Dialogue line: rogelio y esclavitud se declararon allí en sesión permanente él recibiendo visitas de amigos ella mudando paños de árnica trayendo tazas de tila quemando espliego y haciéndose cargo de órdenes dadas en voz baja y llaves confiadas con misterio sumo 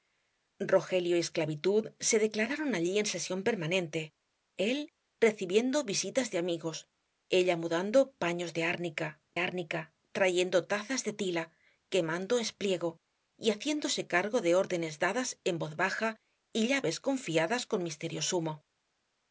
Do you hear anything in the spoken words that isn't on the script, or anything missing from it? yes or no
yes